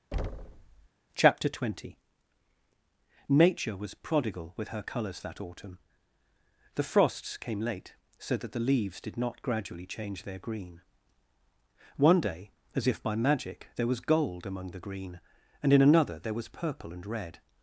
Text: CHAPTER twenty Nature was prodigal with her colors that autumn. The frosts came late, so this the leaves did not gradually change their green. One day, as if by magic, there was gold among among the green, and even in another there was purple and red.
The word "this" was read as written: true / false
false